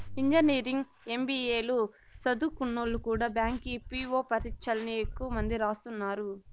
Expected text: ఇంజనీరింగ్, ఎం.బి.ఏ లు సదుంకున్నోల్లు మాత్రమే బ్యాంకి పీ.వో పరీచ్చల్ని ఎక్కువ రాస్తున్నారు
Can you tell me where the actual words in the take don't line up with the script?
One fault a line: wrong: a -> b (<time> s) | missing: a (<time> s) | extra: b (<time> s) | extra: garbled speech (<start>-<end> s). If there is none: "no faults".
wrong: మాత్రమే -> కూడా (3.0 s)
extra: మంది (5.4 s)